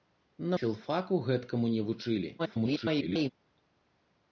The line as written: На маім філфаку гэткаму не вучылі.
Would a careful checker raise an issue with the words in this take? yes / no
yes